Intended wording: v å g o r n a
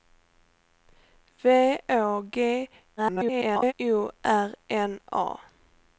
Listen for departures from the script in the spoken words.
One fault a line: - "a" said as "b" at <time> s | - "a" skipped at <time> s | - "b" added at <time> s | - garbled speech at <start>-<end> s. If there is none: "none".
- garbled speech at 3.0-3.7 s